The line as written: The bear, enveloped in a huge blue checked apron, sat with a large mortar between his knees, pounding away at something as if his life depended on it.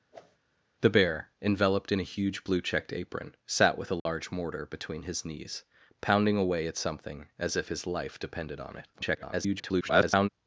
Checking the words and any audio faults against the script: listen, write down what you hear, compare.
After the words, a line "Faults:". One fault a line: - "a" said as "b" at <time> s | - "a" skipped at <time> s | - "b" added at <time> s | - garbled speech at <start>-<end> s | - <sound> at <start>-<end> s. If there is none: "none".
The bear, enveloped in a huge blue checked apron, sat with a large mortar between his knees, pounding away at something as if his life depended on it. [garbled]
Faults:
- whoosh at 0.1-0.4 s
- dropout at 4.0-4.1 s
- garbled speech at 8.9-10.3 s